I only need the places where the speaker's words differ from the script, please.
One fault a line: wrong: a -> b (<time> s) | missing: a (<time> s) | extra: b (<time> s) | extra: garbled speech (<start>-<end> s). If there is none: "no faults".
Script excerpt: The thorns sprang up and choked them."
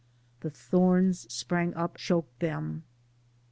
missing: and (2.0 s)